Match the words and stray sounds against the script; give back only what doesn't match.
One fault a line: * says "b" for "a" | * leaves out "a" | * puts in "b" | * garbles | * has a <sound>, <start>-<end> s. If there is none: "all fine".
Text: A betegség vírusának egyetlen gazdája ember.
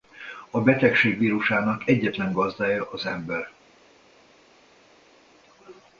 * puts in "az"